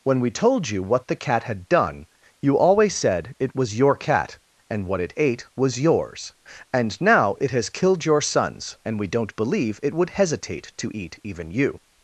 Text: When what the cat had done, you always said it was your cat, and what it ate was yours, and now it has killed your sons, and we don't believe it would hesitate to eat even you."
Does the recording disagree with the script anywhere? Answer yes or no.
yes